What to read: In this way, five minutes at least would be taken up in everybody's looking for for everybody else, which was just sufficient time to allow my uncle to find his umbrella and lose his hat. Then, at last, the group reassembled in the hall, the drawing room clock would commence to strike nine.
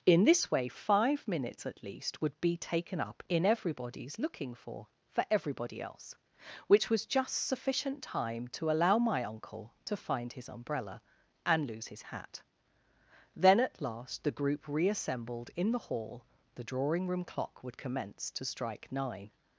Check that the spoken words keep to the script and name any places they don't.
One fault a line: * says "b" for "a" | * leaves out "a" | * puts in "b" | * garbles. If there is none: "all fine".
all fine